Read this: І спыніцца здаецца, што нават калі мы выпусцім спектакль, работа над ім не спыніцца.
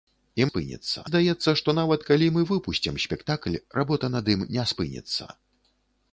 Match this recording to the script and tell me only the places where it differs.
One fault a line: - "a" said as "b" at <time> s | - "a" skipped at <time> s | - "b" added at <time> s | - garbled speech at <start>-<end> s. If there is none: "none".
none